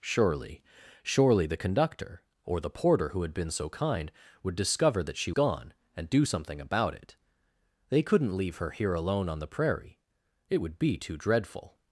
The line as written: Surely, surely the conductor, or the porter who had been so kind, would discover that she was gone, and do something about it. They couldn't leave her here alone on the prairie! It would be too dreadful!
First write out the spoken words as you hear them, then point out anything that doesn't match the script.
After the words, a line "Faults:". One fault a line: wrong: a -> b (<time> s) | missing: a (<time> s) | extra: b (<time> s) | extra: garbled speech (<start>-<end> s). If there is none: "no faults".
Surely, surely the conductor, or the porter who had been so kind, would discover that she gone, and do something about it. They couldn't leave her here alone on the prairie! It would be too dreadful!
Faults:
missing: was (5.3 s)